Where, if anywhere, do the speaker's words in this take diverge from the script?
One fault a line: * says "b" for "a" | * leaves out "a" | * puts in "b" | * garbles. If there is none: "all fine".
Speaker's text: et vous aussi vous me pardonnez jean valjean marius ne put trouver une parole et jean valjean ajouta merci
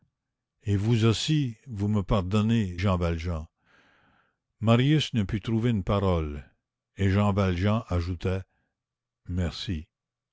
all fine